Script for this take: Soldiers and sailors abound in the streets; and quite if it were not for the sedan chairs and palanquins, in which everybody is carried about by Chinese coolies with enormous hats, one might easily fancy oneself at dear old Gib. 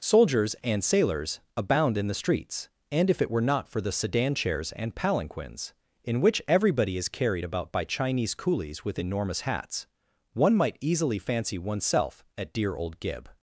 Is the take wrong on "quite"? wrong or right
wrong